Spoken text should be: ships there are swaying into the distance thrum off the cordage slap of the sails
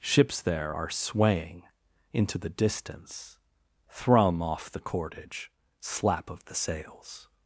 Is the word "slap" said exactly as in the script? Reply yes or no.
yes